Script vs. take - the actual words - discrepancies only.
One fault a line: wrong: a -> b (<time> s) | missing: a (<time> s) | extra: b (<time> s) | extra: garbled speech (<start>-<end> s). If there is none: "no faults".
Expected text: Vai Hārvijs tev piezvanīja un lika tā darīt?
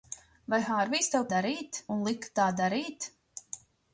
wrong: piezvanīja -> darīt (1.3 s)